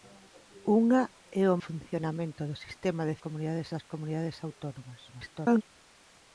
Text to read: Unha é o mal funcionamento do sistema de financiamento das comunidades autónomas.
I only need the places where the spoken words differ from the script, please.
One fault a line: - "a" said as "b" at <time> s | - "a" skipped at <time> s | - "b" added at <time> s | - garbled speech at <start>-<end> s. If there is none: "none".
- "mal" skipped at 1.6 s
- "financiamento" said as "comunidades" at 3.2 s
- garbled speech at 5.1-5.6 s